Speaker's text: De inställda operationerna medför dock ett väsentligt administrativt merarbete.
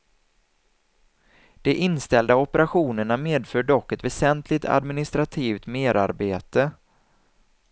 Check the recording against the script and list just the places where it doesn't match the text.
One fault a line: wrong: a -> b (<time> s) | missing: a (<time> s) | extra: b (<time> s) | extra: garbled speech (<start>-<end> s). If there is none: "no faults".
no faults